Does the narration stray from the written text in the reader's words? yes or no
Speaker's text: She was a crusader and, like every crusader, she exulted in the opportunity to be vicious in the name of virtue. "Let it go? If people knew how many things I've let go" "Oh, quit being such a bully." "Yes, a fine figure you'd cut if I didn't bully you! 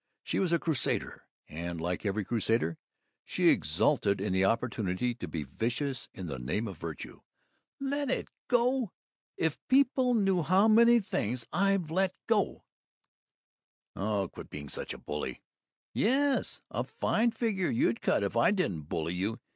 no